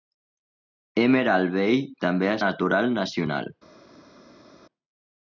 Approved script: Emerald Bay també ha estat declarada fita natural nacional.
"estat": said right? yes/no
no